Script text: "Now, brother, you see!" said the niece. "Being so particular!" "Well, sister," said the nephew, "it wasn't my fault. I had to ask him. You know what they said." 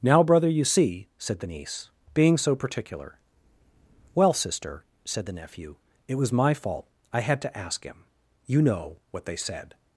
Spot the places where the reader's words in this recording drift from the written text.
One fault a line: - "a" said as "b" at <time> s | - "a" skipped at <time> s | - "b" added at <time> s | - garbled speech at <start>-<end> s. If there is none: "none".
- "wasn't" said as "was" at 6.1 s